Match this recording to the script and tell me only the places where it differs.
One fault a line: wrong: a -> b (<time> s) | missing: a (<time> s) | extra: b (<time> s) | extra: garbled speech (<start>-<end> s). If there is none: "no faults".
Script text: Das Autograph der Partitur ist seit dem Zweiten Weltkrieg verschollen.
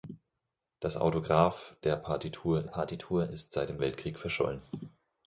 extra: Partitur (2.6 s)
missing: Zweiten (3.8 s)